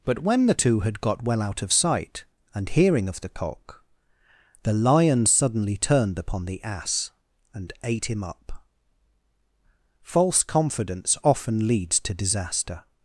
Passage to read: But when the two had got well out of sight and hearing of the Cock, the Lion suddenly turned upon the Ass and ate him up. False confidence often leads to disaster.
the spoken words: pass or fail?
pass